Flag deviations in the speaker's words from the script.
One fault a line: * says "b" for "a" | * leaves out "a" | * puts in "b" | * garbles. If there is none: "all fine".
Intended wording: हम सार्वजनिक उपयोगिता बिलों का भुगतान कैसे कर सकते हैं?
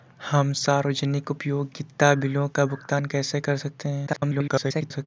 * garbles